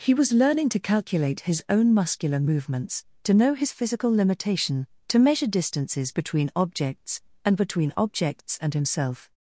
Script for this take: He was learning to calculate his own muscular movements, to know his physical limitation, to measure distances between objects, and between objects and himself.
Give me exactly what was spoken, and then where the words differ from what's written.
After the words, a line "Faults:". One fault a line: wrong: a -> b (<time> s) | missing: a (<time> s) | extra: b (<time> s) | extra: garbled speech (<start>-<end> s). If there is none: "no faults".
He was learning to calculate his own muscular movements, to know his physical limitation, to measure distances between objects, and between objects and himself.
Faults:
no faults